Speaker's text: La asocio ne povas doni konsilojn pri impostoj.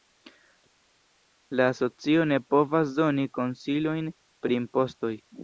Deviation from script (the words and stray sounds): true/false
false